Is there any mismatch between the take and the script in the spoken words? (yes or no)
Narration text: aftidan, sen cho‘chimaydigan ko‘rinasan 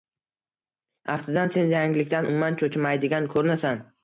yes